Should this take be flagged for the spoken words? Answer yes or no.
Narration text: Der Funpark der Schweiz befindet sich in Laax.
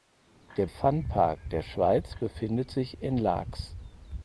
no